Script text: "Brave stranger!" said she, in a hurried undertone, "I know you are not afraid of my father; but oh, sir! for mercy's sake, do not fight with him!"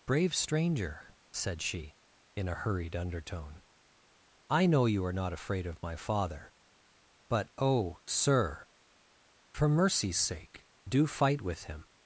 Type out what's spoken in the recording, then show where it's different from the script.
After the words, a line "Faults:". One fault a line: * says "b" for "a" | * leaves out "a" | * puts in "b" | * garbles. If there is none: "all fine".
"Brave stranger!" said she, in a hurried undertone, "I know you are not afraid of my father; but oh, sir! for mercy's sake, do fight with him!"
Faults:
* leaves out "not"